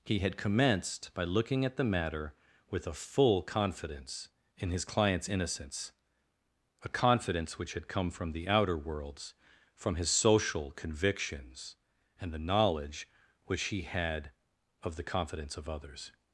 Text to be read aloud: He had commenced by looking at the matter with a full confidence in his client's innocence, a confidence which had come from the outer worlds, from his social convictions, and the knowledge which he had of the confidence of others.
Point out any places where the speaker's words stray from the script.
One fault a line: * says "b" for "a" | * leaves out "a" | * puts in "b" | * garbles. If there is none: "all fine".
all fine